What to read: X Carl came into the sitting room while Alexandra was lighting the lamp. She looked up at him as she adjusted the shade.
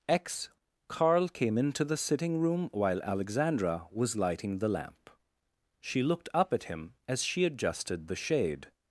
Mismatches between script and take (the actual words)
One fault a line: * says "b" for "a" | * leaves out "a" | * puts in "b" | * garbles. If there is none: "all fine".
all fine